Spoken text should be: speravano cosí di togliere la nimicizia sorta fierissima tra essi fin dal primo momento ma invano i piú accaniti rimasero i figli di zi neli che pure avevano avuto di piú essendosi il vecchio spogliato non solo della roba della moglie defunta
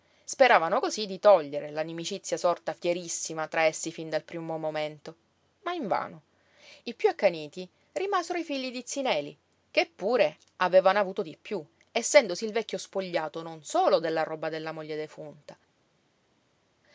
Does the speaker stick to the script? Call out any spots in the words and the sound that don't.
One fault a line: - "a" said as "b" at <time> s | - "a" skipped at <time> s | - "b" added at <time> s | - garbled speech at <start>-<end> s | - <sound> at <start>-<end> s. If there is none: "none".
none